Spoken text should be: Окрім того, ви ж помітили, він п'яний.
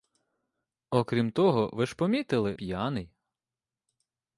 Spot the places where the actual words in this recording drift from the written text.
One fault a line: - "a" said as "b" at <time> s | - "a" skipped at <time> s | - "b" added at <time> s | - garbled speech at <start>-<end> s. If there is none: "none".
- "він" skipped at 2.5 s